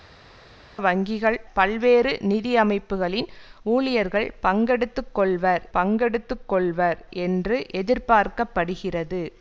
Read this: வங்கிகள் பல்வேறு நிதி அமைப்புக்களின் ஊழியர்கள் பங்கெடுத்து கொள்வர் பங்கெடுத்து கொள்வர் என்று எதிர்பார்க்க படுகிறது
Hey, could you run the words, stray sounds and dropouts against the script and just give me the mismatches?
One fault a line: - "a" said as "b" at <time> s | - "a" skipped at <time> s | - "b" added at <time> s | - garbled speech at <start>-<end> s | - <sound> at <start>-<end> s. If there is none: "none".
none